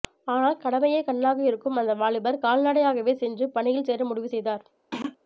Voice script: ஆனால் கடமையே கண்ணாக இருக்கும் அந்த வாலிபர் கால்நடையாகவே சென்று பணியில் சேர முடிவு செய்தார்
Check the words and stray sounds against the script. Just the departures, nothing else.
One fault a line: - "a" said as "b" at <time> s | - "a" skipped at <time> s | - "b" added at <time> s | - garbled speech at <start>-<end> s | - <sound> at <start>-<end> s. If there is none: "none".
- throat clearing at 4.9-5.2 s